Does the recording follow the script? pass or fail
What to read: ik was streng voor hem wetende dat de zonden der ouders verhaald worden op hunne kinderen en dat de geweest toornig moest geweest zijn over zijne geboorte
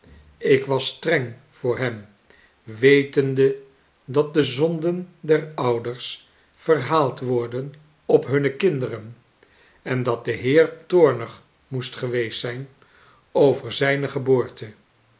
fail